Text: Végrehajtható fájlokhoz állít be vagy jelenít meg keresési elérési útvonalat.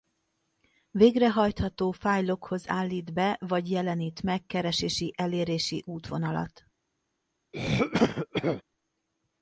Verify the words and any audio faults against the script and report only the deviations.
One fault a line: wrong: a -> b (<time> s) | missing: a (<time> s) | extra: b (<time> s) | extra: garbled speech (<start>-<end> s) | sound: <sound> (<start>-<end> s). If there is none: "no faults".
sound: throat clearing (7.5-8.6 s)